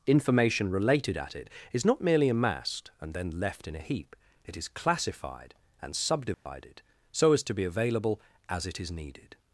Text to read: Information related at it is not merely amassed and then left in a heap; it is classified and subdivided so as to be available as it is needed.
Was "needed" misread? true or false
false